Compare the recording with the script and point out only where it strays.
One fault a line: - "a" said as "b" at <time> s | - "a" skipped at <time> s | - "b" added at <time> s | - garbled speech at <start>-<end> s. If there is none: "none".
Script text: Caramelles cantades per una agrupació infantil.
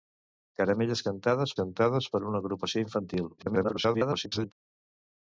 - "cantades" added at 1.6 s
- garbled speech at 3.4-4.5 s